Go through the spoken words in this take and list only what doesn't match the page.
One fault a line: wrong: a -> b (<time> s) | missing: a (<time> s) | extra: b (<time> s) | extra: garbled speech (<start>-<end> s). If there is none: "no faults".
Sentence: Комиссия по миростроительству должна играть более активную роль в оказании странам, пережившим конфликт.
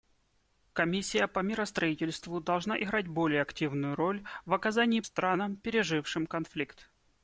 no faults